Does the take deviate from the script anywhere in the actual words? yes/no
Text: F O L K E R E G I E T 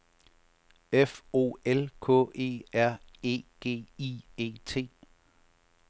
no